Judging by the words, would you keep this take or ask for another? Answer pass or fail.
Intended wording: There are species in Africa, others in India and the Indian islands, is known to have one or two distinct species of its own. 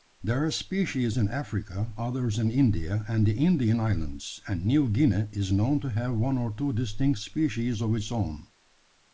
fail